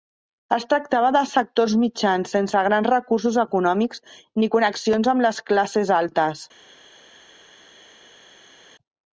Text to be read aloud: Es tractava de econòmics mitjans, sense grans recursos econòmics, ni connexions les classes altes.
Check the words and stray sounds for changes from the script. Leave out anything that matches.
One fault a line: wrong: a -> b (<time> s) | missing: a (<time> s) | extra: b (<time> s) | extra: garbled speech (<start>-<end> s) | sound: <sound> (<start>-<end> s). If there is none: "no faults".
wrong: econòmics -> sectors (1.3 s)
extra: amb (5.2 s)